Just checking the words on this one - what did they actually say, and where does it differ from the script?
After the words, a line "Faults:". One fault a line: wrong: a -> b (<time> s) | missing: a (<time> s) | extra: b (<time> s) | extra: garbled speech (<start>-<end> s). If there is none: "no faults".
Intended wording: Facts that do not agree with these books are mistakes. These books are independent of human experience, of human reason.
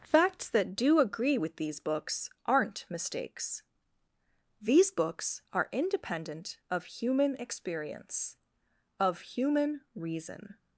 Facts that do agree with these books aren't mistakes. These books are independent of human experience, of human reason.
Faults:
missing: not (1.0 s)
wrong: are -> aren't (2.5 s)